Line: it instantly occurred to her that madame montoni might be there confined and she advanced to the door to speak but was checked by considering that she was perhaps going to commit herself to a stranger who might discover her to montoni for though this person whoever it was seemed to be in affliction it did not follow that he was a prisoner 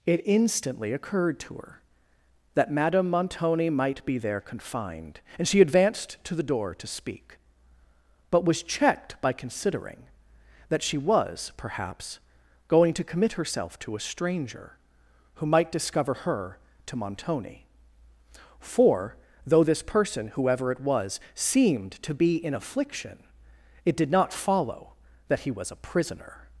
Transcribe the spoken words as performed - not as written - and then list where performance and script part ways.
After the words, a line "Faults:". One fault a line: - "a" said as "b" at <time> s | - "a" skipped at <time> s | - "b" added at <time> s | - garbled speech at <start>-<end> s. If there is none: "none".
it instantly occurred to her that madame montoni might be there confined and she advanced to the door to speak but was checked by considering that she was perhaps going to commit herself to a stranger who might discover her to montoni for though this person whoever it was seemed to be in affliction it did not follow that he was a prisoner
Faults:
none